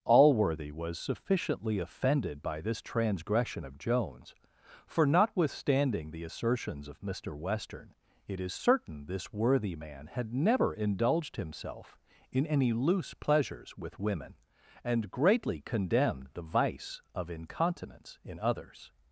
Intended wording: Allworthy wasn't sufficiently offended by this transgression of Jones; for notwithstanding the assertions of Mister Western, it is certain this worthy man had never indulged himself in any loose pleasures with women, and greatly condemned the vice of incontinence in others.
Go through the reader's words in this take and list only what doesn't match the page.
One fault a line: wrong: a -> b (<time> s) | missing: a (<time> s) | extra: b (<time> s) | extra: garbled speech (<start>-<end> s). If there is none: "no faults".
wrong: wasn't -> was (0.7 s)